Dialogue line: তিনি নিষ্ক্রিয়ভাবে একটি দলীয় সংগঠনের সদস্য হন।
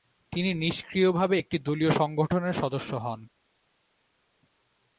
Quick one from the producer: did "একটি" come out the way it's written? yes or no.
yes